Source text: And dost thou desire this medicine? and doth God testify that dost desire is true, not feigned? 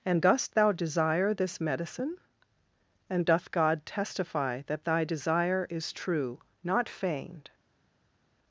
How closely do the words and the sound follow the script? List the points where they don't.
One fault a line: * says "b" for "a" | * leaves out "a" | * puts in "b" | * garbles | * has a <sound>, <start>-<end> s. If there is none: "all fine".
* says "thy" for "dost"